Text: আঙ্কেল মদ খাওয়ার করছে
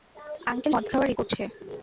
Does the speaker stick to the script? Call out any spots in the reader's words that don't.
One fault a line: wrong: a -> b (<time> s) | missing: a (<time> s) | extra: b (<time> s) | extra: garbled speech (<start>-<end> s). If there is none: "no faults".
no faults